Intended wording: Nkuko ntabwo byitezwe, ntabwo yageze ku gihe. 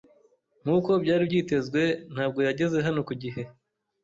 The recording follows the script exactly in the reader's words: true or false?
false